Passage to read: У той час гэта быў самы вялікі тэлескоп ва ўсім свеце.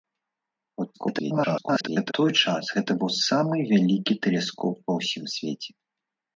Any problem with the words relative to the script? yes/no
yes